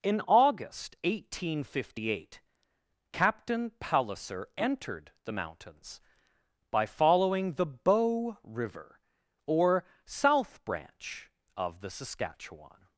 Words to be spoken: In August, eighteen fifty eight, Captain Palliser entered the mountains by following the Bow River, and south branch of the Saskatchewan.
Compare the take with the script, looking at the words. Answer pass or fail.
fail